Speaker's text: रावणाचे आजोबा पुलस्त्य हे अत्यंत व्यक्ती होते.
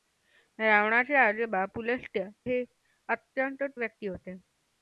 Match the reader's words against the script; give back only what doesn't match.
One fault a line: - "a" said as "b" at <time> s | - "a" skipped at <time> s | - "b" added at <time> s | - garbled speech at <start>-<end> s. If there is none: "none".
none